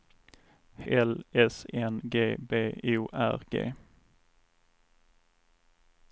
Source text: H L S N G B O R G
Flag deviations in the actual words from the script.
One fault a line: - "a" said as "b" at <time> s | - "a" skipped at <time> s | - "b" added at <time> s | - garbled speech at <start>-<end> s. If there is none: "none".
none